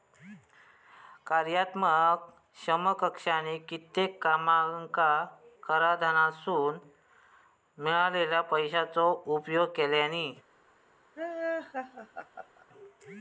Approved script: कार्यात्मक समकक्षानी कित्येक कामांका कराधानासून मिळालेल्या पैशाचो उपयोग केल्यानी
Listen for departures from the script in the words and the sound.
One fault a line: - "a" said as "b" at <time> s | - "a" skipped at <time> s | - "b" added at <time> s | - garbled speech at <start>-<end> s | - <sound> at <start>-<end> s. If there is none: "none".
- laugh at 11.2-12.7 s